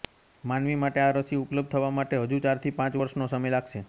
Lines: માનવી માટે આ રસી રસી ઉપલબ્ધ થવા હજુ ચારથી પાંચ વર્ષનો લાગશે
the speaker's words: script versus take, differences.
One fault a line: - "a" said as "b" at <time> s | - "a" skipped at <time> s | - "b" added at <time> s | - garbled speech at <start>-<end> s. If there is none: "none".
- "રસી" skipped at 1.4 s
- "માટે" added at 2.0 s
- "સમય" added at 3.3 s